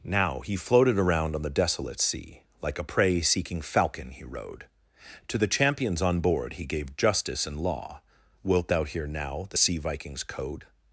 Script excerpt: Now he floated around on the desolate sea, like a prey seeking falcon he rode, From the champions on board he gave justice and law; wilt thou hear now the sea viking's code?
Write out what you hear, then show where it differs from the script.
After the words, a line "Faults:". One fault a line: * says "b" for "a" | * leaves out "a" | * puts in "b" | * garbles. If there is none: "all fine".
Now he floated around on the desolate sea, like a prey seeking falcon he rode, To the champions on board he gave justice and law; wilt thou hear now the sea viking's code?
Faults:
* says "To" for "From"